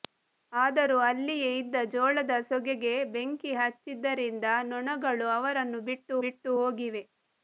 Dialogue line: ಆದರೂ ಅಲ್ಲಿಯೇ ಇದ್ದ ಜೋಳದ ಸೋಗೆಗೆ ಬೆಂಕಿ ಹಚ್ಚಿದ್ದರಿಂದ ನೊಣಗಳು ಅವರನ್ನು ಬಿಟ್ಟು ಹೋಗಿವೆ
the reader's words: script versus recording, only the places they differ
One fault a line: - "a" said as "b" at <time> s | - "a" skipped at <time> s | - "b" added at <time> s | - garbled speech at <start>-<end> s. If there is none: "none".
- "ಬಿಟ್ಟು" added at 6.2 s